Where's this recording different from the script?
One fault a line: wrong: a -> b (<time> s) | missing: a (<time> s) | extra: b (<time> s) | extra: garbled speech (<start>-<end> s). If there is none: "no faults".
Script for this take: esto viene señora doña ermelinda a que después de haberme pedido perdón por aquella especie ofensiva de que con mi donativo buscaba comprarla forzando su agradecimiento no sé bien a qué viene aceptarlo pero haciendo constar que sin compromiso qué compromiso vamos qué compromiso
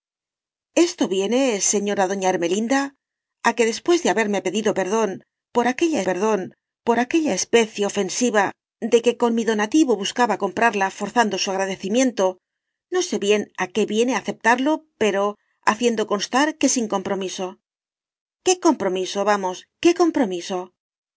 extra: perdón por aquella (6.1 s)